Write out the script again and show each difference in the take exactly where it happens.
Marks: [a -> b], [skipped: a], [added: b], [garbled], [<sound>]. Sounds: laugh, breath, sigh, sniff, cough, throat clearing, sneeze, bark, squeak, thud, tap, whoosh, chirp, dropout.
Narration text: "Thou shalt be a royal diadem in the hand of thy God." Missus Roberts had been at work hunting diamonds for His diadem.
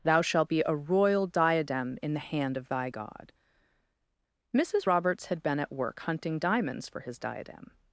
"Thou shalt be a royal diadem in the hand of thy God." Missus Roberts had been at work hunting diamonds for His diadem.